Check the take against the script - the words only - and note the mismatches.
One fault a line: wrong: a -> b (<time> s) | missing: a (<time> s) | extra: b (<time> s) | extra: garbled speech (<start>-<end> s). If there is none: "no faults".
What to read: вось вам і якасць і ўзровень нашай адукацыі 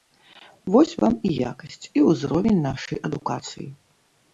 no faults